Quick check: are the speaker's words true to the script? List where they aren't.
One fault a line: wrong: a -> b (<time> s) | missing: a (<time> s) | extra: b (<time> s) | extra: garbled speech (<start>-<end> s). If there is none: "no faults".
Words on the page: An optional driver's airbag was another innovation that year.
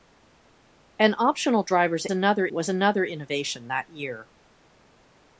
wrong: airbag -> another (2.1 s)